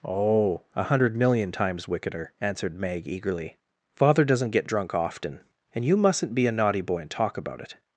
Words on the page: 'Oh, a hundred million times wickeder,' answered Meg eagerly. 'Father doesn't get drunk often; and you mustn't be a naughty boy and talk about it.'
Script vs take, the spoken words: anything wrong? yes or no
no